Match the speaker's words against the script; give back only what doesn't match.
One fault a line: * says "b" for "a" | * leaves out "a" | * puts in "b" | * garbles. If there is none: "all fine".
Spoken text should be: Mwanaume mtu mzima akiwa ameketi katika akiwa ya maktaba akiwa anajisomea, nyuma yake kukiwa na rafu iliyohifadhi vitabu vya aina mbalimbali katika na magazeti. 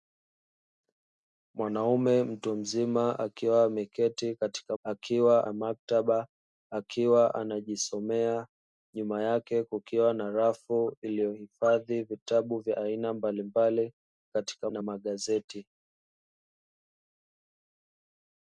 all fine